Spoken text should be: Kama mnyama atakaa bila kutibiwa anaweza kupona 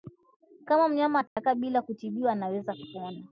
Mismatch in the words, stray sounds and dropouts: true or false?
true